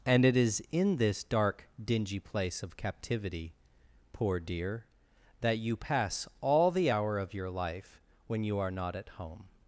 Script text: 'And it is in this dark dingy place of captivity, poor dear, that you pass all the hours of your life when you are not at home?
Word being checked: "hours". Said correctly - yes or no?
no